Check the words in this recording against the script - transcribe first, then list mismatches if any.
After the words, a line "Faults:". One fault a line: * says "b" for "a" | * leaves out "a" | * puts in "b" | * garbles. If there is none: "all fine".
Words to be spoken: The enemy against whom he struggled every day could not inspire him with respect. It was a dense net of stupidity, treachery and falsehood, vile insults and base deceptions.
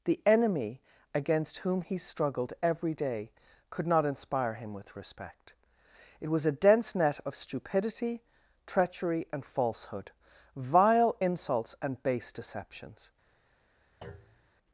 The enemy against whom he struggled every day could not inspire him with respect. It was a dense net of stupidity, treachery and falsehood, vile insults and base deceptions.
Faults:
all fine